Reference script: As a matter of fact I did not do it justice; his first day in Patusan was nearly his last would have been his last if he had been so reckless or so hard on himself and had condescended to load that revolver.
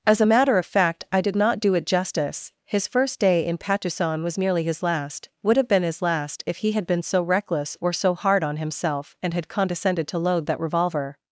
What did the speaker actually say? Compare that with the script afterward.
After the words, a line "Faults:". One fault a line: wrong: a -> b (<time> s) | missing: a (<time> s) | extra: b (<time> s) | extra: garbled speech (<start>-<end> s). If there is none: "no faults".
As a matter of fact I did not do it justice; his first day in Patusan was nearly his last would have been his last if he had been so reckless or so hard on himself and had condescended to load that revolver.
Faults:
no faults